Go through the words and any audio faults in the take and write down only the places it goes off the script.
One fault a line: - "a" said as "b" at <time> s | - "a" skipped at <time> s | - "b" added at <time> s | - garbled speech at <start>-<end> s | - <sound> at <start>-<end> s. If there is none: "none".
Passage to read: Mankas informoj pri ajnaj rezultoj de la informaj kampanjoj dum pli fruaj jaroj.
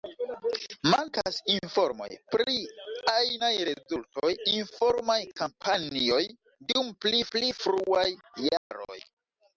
- "de" skipped at 4.3 s
- "pli" added at 7.4 s
- dropout at 8.6-8.7 s